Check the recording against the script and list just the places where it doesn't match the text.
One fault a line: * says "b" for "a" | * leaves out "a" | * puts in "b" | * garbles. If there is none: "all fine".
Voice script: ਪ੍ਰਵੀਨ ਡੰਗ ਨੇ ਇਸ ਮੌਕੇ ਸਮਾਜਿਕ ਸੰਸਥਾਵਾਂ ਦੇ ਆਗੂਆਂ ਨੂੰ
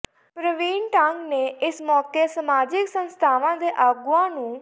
all fine